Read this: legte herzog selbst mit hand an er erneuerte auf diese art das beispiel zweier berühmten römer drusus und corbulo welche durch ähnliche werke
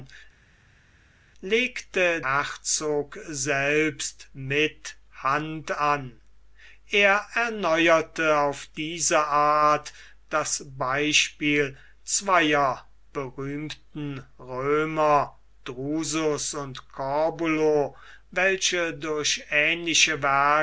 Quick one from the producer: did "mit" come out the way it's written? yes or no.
yes